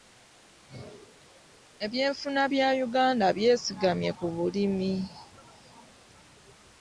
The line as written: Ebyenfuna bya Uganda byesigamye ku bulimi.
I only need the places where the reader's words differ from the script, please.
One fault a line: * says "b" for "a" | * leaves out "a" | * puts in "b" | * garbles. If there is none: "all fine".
all fine